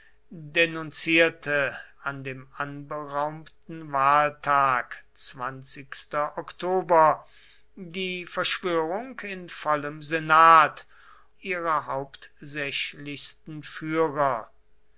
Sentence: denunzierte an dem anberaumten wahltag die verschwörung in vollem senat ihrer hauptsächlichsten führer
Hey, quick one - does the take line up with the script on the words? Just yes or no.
yes